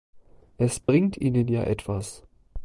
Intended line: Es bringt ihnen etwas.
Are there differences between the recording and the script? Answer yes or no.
yes